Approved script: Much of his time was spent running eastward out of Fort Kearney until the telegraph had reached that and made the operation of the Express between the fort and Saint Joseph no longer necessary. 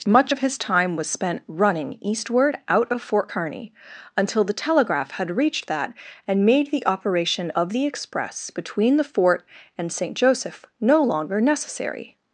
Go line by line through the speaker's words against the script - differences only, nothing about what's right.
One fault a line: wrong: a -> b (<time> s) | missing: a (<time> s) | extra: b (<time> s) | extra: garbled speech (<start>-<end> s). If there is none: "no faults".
no faults